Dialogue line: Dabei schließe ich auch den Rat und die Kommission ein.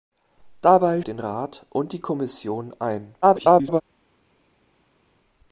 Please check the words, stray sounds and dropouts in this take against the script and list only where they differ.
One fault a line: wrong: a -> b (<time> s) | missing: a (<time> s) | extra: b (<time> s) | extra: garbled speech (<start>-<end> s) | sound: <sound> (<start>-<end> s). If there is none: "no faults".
missing: schließe ich auch (1.0 s)
extra: garbled speech (3.2-3.8 s)